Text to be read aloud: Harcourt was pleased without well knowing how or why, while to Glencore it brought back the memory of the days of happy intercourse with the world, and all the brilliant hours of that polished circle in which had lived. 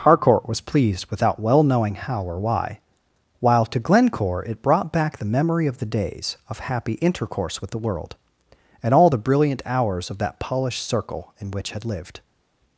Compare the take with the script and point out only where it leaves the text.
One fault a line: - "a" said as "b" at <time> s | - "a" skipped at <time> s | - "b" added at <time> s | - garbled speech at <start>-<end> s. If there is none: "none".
none